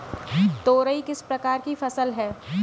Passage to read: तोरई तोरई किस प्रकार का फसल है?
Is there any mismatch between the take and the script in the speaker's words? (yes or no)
yes